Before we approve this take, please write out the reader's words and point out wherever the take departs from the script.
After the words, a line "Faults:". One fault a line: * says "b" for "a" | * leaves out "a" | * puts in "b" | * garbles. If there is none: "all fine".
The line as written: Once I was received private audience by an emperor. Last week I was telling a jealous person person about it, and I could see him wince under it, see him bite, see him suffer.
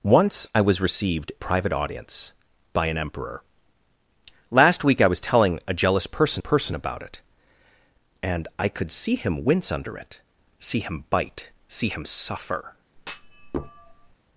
Once I was received private audience by an emperor. Last week I was telling a jealous person person about it, and I could see him wince under it, see him bite, see him suffer.
Faults:
all fine